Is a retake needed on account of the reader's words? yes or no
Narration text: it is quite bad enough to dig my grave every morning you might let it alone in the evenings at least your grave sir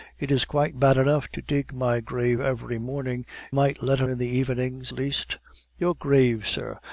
yes